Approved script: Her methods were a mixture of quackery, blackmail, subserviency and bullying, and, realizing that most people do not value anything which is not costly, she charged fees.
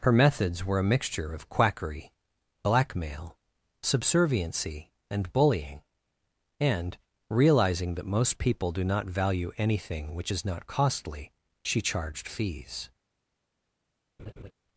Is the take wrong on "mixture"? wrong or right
right